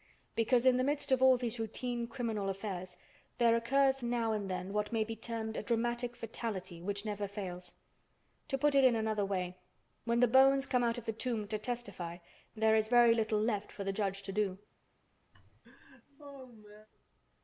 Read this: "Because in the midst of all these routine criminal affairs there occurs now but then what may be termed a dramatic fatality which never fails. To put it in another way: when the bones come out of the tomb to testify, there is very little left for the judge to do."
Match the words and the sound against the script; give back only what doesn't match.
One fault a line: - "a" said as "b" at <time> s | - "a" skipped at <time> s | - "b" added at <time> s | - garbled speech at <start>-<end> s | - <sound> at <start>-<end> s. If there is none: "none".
- "but" said as "and" at 4.3 s
- laugh at 15.3-16.9 s